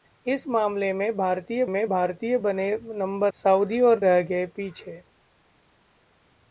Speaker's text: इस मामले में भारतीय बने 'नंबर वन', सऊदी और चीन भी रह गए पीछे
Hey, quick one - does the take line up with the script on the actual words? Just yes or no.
no